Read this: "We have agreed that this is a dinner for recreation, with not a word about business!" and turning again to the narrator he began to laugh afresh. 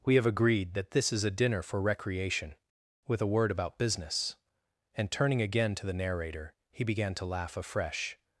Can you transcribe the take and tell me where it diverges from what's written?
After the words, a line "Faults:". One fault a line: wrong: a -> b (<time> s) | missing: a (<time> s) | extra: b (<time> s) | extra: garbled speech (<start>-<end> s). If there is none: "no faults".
"We have agreed that this is a dinner for recreation, with a word about business!" and turning again to the narrator he began to laugh afresh.
Faults:
missing: not (3.2 s)